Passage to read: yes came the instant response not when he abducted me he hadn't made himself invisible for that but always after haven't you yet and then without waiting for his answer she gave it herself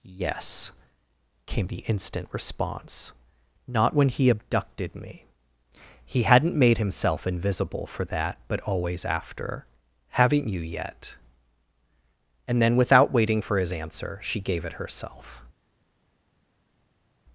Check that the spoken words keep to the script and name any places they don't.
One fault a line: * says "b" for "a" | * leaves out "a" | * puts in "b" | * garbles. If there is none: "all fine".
all fine